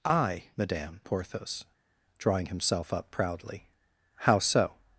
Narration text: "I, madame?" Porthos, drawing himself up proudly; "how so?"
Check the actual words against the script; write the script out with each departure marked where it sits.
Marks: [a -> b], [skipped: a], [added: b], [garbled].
"I, madame?" Porthos, drawing himself up proudly; "how so?"